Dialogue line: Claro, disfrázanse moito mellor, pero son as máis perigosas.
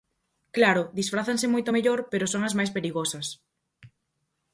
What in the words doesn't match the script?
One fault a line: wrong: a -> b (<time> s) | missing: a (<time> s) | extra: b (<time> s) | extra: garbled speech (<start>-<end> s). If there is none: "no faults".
no faults